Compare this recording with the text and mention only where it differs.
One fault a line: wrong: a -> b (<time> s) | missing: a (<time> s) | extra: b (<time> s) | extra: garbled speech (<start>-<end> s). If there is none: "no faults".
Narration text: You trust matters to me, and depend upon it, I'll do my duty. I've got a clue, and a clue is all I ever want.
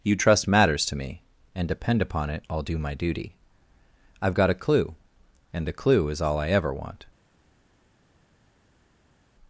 no faults